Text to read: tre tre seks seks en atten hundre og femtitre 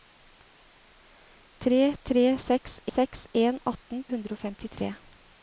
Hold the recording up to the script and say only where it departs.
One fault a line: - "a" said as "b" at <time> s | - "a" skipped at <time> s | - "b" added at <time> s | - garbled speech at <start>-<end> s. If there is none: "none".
none